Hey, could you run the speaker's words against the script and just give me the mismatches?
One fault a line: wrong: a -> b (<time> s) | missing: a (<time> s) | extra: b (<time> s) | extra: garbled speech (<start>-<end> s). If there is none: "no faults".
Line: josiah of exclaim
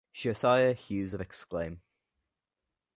extra: hughes (0.7 s)